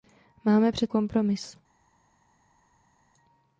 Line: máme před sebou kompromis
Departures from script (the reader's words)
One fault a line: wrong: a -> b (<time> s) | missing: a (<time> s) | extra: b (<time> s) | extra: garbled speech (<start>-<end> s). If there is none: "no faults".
missing: sebou (0.9 s)